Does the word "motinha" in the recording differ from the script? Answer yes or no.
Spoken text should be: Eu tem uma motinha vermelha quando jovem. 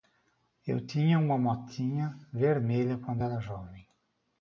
no